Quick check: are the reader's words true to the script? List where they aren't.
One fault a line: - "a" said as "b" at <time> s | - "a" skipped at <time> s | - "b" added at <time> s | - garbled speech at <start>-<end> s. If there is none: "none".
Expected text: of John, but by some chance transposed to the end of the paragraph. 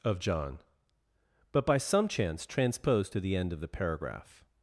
none